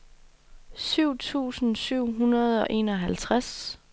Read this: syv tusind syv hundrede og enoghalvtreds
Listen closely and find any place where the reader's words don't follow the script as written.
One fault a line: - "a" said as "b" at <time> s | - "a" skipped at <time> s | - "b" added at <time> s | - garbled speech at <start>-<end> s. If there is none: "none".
none